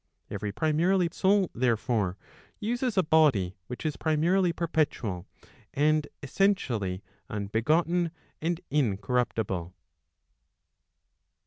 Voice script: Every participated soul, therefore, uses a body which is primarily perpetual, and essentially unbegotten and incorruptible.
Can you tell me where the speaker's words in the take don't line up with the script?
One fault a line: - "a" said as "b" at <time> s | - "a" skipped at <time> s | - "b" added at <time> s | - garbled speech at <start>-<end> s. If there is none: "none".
- "participated" said as "primarily" at 0.5 s